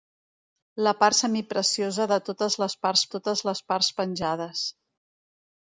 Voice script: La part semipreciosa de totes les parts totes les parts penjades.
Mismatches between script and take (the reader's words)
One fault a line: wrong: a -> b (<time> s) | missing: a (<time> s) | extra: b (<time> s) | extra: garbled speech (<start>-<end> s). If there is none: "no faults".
no faults